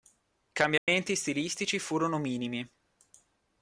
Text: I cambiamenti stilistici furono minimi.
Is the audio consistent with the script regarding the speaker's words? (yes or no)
yes